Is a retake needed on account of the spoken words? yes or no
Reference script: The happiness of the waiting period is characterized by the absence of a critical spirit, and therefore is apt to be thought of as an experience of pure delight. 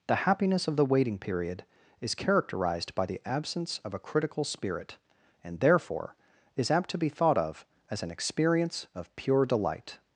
no